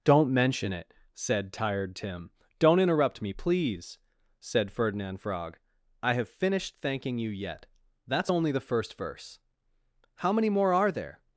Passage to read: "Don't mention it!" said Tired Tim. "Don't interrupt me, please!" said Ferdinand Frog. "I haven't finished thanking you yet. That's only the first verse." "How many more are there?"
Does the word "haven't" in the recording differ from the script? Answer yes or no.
yes